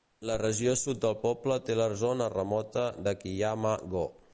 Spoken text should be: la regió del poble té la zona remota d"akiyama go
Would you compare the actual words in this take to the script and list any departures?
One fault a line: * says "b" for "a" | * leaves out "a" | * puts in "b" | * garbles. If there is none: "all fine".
* puts in "sud"